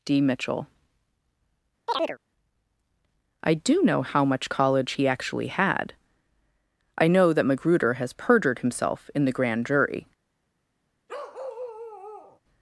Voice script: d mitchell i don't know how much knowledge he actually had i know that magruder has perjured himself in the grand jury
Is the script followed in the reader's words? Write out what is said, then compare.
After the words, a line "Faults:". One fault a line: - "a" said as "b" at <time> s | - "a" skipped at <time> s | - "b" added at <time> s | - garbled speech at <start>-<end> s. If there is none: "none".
d mitchell i do know how much college he actually had i know that magruder has perjured himself in the grand jury
Faults:
- "don't" said as "do" at 3.5 s
- "knowledge" said as "college" at 4.5 s